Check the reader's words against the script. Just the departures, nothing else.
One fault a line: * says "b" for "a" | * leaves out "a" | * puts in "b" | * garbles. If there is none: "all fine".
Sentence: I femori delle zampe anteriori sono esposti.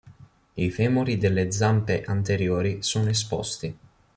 all fine